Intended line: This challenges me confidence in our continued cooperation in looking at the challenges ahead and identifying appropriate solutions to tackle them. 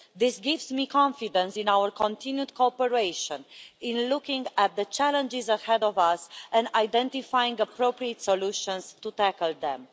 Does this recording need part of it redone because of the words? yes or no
yes